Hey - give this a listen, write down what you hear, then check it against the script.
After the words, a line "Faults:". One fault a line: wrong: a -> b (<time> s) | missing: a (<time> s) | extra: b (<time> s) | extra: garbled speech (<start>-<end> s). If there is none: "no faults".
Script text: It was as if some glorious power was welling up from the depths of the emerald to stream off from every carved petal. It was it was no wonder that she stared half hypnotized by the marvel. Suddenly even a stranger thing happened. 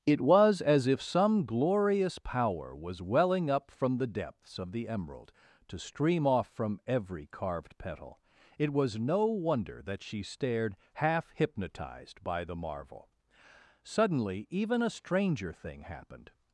It was as if some glorious power was welling up from the depths of the emerald to stream off from every carved petal. It was no wonder that she stared half hypnotized by the marvel. Suddenly even a stranger thing happened.
Faults:
missing: it was (9.0 s)